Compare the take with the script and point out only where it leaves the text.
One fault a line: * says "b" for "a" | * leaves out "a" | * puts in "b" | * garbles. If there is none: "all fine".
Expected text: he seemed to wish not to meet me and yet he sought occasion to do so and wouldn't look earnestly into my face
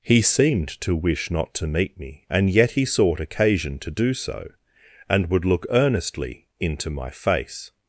* says "would" for "wouldn't"